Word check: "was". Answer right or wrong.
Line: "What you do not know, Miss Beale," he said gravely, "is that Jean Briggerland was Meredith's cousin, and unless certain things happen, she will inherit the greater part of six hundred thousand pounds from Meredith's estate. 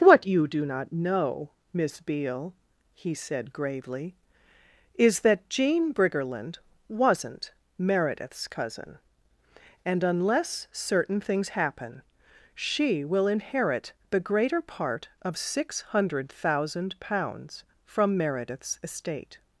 wrong